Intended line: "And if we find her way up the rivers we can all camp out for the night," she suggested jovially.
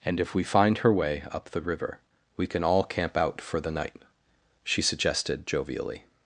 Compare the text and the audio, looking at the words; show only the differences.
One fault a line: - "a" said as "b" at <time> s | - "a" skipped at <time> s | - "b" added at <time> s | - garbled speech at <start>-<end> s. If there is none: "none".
- "rivers" said as "river" at 1.6 s